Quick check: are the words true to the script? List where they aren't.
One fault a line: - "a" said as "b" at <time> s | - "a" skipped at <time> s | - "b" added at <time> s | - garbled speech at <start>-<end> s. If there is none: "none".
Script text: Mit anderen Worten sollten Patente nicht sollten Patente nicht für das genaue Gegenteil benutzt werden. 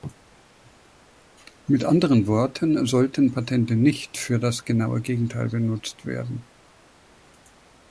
- "sollten Patente nicht" skipped at 4.2 s